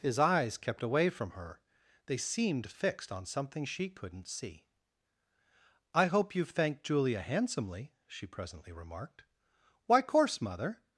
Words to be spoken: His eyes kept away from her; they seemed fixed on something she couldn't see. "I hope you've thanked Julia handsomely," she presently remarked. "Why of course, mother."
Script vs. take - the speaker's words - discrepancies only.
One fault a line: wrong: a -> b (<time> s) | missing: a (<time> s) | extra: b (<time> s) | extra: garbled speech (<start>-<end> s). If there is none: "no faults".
missing: of (10.0 s)